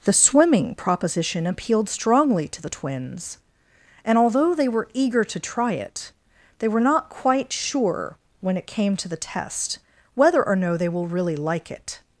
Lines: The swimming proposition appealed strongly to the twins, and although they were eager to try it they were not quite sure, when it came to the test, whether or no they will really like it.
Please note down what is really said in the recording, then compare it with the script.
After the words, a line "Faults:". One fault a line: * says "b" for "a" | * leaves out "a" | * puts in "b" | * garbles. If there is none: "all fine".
The swimming proposition appealed strongly to the twins, and although they were eager to try it they were not quite sure, when it came to the test, whether or no they will really like it.
Faults:
all fine